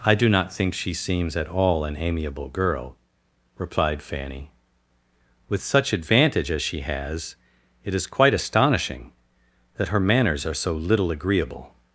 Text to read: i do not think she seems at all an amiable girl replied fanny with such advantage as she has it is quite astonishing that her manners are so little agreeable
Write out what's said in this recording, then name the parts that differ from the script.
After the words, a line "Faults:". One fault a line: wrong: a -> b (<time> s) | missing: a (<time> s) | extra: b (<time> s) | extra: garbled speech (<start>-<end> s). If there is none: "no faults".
i do not think she seems at all an amiable girl replied fanny with such advantage as she has it is quite astonishing that her manners are so little agreeable
Faults:
no faults